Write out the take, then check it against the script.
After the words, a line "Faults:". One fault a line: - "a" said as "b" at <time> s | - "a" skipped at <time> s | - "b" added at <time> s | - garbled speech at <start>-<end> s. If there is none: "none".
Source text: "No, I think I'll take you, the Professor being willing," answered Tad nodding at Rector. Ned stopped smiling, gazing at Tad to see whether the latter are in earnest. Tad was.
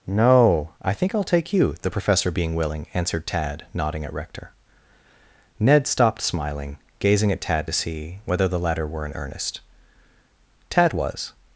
"No, I think I'll take you, the Professor being willing," answered Tad nodding at Rector. Ned stopped smiling, gazing at Tad to see whether the latter were in earnest. Tad was.
Faults:
- "are" said as "were" at 8.9 s